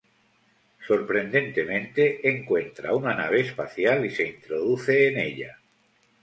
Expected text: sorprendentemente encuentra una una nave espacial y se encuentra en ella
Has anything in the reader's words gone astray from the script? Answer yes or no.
yes